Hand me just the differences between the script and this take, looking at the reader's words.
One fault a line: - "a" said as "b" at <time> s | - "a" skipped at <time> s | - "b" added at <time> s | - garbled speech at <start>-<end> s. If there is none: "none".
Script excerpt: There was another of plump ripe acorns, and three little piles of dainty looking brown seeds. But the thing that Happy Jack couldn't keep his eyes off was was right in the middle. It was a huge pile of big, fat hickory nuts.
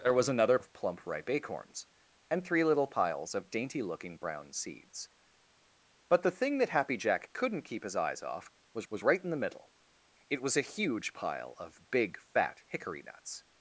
none